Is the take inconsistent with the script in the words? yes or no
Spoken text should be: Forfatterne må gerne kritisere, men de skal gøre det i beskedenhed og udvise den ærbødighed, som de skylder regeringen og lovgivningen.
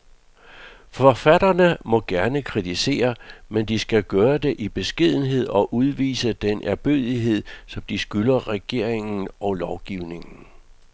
no